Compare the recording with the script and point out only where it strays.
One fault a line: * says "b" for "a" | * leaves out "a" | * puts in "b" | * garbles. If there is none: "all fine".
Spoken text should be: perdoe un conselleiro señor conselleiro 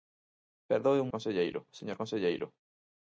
all fine